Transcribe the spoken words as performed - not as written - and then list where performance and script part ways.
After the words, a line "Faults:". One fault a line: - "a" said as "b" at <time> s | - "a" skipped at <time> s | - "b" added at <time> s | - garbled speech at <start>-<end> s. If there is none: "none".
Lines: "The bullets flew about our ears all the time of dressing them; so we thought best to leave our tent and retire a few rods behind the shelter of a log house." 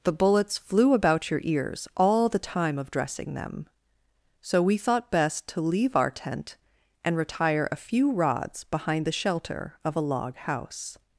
"The bullets flew about your ears all the time of dressing them; so we thought best to leave our tent and retire a few rods behind the shelter of a log house."
Faults:
- "our" said as "your" at 1.3 s